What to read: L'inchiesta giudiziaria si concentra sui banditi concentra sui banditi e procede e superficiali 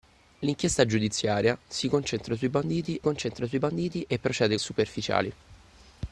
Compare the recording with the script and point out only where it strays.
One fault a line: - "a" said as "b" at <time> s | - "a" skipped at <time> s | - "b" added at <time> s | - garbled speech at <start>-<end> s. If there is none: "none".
none